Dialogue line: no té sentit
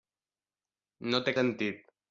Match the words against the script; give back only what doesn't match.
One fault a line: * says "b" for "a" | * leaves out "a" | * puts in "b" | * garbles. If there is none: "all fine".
all fine